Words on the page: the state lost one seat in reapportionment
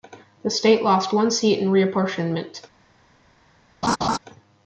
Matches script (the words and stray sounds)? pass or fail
fail